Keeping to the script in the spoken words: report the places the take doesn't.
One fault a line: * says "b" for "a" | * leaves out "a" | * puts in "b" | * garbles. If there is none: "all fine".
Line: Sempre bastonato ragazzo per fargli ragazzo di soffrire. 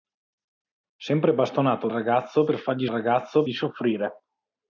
all fine